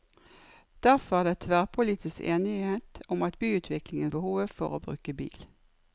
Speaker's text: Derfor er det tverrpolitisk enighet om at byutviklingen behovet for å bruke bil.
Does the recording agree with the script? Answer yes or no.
yes